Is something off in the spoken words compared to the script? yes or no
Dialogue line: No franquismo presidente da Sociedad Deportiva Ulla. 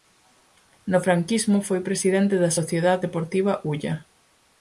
yes